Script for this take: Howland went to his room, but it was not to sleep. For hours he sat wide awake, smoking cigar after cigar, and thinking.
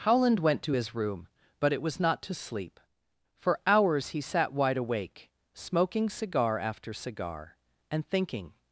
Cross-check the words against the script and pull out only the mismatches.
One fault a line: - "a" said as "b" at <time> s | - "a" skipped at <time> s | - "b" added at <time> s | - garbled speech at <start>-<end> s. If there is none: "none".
none